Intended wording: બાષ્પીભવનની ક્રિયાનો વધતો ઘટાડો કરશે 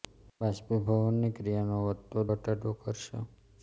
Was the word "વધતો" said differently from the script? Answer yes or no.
no